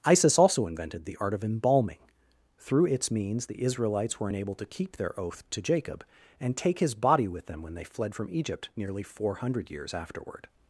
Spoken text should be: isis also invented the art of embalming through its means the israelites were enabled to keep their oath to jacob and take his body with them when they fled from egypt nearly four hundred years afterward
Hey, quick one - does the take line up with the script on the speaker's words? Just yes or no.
yes